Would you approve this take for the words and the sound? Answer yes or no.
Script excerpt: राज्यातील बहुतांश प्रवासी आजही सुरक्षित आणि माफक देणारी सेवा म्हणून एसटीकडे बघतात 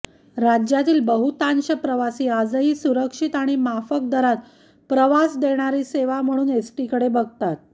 no